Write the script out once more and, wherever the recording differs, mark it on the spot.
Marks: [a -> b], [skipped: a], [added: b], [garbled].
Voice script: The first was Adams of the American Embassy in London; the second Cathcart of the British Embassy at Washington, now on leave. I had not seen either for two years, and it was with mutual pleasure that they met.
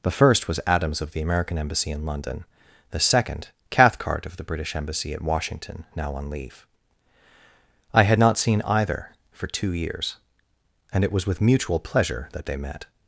The first was Adams of the American Embassy in London; the second Cathcart of the British Embassy at Washington, now on leave. I had not seen either for two years, and it was with mutual pleasure that they met.